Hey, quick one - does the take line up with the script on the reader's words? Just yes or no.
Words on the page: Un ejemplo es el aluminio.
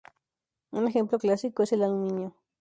no